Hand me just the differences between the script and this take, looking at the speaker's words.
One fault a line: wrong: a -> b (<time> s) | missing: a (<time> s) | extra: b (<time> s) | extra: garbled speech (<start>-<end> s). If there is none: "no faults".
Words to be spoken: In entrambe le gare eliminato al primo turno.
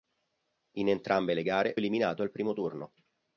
no faults